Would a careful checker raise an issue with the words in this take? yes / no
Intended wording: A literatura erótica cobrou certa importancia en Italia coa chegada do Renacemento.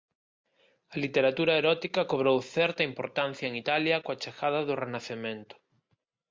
no